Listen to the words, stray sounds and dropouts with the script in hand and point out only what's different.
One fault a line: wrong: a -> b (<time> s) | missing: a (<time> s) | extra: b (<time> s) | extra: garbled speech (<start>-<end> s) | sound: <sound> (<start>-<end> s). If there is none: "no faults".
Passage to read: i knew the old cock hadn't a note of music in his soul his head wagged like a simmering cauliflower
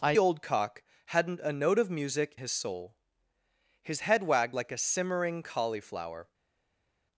missing: knew the (0.1 s)
missing: in (2.4 s)